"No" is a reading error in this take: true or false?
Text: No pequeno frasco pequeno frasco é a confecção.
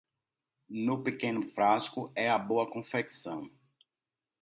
false